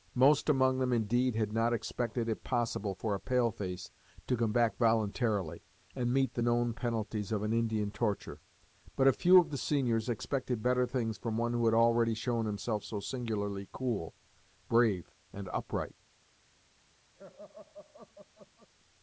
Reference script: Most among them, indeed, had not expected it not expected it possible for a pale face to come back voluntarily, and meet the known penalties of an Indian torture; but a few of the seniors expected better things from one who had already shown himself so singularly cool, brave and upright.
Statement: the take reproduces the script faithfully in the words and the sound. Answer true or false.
false